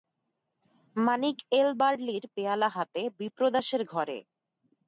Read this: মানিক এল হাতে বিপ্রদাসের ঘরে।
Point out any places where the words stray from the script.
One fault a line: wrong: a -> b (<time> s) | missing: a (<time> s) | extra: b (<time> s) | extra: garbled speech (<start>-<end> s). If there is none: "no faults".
extra: বার্লির পেয়ালা (1.8 s)